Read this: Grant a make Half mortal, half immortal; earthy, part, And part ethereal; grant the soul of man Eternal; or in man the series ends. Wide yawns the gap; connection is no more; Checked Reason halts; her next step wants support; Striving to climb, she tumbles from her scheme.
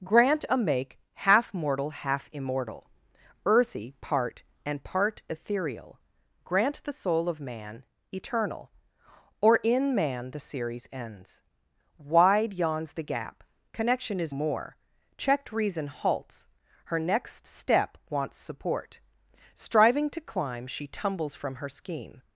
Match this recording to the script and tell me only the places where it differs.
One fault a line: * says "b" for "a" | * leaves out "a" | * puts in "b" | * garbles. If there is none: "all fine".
* leaves out "no"